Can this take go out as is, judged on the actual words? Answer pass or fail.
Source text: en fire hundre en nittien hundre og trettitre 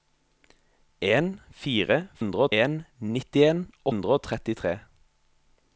pass